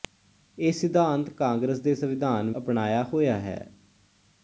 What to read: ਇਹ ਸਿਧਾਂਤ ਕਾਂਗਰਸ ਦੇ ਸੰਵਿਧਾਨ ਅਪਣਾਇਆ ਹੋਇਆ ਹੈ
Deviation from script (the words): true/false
false